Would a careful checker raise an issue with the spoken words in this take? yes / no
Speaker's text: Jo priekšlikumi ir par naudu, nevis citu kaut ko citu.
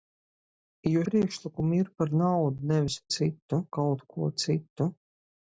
no